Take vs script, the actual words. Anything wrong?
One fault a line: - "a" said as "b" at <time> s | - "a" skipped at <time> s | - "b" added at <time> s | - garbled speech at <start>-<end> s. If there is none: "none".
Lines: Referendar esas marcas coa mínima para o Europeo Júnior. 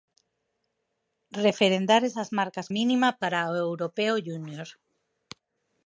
- "coa" skipped at 2.7 s